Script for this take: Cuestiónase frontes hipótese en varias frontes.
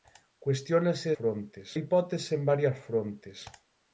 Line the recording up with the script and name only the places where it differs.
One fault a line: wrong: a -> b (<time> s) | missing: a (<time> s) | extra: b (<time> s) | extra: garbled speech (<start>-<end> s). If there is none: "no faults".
no faults